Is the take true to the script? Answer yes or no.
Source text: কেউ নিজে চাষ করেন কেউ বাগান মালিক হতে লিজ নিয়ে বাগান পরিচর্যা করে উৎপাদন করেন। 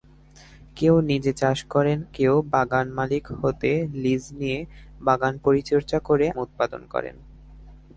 yes